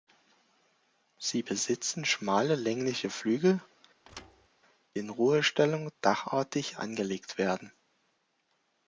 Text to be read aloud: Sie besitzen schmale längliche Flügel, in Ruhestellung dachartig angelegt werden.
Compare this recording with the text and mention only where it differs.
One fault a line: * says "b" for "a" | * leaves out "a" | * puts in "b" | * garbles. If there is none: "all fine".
all fine